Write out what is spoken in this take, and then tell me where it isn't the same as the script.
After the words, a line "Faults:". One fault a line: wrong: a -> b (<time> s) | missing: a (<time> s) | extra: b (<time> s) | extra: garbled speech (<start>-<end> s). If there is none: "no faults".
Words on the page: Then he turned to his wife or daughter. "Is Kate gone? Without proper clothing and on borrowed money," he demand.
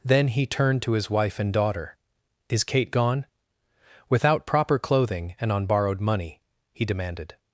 Then he turned to his wife and daughter. "Is Kate gone? Without proper clothing and on borrowed money," he demanded.
Faults:
wrong: or -> and (1.4 s)
wrong: demand -> demanded (6.9 s)